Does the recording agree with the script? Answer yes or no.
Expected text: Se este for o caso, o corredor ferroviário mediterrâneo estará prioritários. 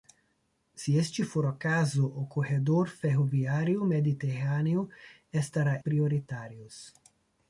yes